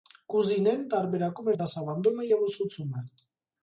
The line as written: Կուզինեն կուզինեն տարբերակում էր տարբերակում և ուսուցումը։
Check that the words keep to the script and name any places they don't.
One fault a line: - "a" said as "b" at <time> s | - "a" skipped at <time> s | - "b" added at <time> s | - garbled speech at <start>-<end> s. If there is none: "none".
- "կուզինեն" skipped at 0.8 s
- "տարբերակում" said as "դասավանդումը" at 1.6 s